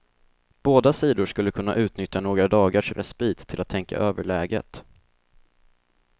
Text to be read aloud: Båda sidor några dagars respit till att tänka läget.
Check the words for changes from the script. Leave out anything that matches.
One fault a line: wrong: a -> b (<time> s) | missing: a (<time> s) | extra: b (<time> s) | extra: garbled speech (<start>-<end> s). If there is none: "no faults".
extra: skulle kunna utnyttja (1.2 s)
extra: över (4.0 s)